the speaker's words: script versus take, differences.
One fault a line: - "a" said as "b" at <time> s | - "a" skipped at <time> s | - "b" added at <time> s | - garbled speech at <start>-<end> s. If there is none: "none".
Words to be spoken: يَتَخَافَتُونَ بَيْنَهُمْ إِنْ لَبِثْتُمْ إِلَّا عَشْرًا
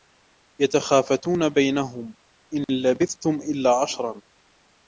none